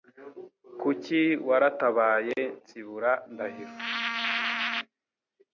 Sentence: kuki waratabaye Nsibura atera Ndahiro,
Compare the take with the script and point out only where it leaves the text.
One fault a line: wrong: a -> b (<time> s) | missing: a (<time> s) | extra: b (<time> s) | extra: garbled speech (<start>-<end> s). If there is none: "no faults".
missing: atera (3.1 s)